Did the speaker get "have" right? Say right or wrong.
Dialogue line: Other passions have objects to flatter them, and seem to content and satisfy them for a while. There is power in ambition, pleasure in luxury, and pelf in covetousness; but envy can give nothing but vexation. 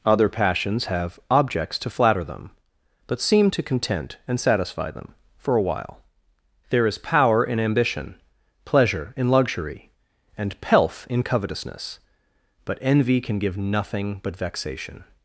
right